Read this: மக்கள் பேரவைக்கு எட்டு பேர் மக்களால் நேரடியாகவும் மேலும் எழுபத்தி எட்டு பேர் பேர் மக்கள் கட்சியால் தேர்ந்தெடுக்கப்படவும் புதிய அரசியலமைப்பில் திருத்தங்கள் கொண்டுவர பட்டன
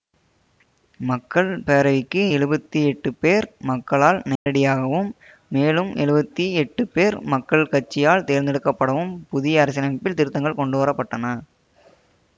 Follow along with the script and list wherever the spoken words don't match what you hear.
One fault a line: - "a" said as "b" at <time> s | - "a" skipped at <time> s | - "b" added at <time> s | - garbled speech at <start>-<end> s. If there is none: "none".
- "எழுபத்தி" added at 2.3 s
- "பேர்" skipped at 7.2 s